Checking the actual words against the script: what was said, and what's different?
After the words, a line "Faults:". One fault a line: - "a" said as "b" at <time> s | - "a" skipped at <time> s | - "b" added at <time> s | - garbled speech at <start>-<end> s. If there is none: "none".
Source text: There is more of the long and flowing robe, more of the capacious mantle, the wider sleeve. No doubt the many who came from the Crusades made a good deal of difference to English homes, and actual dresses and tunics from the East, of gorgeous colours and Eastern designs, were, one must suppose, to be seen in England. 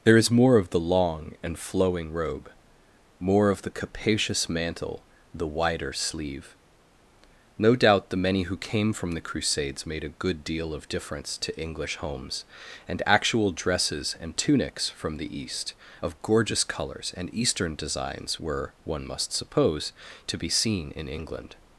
There is more of the long and flowing robe, more of the capacious mantle, the wider sleeve. No doubt the many who came from the Crusades made a good deal of difference to English homes, and actual dresses and tunics from the East, of gorgeous colours and Eastern designs, were, one must suppose, to be seen in England.
Faults:
none